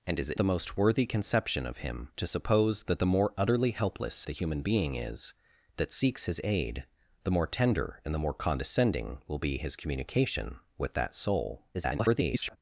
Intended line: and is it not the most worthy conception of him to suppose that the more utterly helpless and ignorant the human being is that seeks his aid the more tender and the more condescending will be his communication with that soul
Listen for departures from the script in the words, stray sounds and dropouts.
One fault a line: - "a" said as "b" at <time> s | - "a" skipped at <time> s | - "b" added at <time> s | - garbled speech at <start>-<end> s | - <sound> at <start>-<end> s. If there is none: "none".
- "not" skipped at 0.4 s
- "and ignorant" skipped at 4.2 s
- garbled speech at 11.7-12.6 s